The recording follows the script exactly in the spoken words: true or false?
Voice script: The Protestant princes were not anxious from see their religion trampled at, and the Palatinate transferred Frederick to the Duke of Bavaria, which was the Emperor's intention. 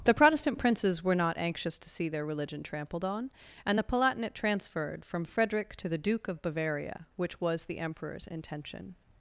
false